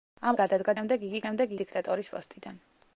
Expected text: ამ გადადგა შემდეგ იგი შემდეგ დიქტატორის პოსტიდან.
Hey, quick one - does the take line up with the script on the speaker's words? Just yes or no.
yes